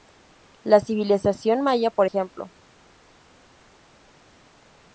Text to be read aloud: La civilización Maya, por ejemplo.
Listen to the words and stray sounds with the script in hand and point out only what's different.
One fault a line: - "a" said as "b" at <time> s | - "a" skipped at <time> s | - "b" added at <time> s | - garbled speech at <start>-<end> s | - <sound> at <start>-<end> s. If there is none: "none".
none